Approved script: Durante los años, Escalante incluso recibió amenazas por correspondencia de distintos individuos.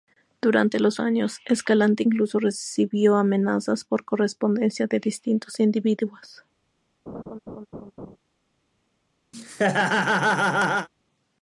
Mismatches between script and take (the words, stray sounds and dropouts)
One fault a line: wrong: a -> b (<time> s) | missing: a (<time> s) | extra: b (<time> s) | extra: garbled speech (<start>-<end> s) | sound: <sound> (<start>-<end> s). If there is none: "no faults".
sound: laugh (7.1-8.2 s)
sound: laugh (9.3-10.9 s)